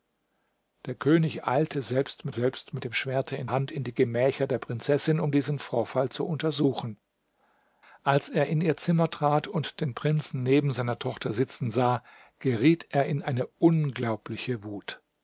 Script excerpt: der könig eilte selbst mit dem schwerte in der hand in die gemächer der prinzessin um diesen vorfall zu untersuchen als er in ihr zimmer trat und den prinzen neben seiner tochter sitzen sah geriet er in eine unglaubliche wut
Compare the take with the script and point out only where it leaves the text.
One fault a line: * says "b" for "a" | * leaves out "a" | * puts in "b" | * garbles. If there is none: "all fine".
* puts in "selbst mit"
* leaves out "der"